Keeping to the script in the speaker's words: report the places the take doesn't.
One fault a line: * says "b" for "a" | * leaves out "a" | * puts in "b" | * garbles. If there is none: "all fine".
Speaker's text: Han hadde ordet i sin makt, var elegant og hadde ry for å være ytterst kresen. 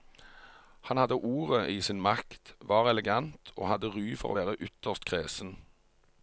all fine